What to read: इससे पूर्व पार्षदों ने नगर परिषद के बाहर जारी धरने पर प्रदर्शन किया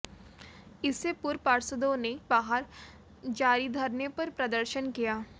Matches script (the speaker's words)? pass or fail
fail